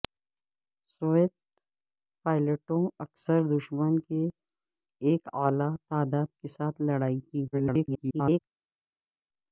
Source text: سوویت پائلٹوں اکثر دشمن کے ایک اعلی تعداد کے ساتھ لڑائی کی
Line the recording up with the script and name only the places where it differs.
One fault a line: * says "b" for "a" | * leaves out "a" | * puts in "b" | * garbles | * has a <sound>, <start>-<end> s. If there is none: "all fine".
* garbles